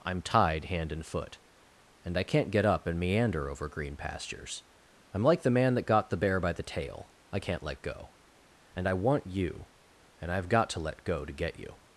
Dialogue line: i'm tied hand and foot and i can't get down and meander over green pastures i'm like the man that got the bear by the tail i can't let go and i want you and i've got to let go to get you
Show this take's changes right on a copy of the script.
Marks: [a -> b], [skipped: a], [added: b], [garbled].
i'm tied hand and foot and i can't get [down -> up] and meander over green pastures i'm like the man that got the bear by the tail i can't let go and i want you and i've got to let go to get you